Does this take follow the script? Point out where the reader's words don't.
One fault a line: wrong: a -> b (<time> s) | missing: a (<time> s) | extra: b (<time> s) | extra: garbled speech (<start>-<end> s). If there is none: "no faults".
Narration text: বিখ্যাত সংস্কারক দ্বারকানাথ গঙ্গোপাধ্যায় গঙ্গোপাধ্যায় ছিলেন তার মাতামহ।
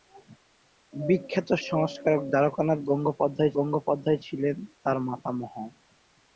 no faults